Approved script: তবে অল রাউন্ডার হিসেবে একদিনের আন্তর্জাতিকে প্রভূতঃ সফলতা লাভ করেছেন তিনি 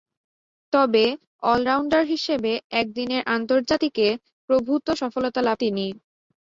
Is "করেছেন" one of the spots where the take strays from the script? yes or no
yes